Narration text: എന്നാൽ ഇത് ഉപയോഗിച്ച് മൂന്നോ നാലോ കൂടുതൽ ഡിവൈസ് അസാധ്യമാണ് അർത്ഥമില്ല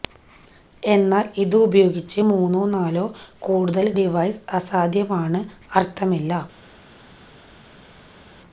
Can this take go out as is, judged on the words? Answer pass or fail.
pass